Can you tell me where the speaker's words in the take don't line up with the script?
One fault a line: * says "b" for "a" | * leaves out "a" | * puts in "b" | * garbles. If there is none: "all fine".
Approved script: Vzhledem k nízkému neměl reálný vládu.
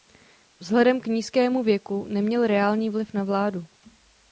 * puts in "věku"
* puts in "vliv na"